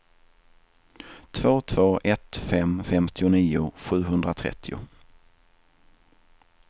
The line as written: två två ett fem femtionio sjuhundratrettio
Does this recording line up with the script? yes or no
yes